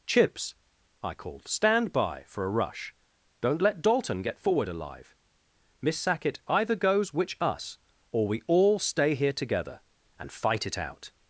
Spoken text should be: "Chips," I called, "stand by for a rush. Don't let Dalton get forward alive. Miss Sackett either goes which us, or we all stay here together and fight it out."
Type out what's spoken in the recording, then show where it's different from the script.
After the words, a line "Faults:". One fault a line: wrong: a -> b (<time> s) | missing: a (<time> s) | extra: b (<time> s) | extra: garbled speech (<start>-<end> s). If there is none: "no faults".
"Chips," I called, "stand by for a rush. Don't let Dalton get forward alive. Miss Sackett either goes which us, or we all stay here together and fight it out."
Faults:
no faults